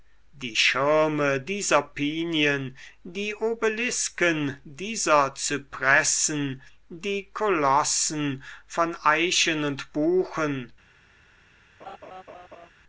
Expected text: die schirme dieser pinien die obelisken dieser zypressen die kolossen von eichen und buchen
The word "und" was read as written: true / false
true